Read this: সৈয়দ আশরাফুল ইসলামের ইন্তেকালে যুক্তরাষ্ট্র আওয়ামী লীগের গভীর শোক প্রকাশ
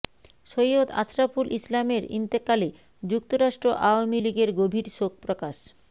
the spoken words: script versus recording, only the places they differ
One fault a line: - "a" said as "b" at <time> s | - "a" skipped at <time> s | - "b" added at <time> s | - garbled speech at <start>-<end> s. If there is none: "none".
none